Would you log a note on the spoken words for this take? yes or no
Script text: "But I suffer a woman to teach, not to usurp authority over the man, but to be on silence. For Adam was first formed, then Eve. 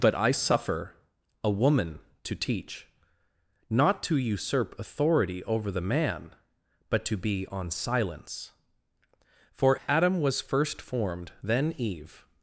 no